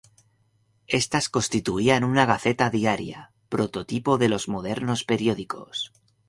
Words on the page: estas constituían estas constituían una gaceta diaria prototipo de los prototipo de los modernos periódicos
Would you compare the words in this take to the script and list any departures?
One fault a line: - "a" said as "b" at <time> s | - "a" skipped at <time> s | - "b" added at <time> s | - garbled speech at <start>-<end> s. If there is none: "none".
- "estas constituían" skipped at 2.0 s
- "prototipo de los" skipped at 4.5 s